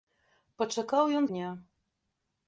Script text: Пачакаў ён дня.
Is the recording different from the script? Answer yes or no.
no